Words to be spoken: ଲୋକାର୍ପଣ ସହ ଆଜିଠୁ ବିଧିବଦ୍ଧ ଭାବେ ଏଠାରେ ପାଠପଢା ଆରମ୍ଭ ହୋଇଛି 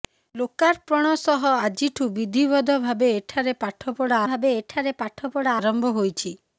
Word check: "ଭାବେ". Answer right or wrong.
right